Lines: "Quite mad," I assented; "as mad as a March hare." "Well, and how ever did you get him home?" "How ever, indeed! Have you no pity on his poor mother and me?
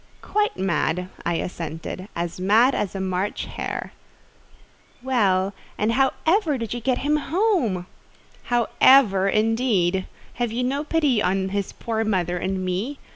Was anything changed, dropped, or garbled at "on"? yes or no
no